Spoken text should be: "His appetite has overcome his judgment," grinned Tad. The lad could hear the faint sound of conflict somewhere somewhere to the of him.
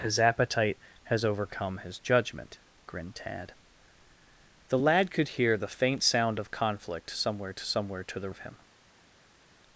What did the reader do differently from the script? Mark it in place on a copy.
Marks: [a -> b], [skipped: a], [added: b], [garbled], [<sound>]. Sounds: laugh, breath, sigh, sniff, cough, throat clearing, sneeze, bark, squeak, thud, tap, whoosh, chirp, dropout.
"His appetite has overcome his judgment," grinned Tad. The lad could hear the faint sound of conflict somewhere somewhere to the of him.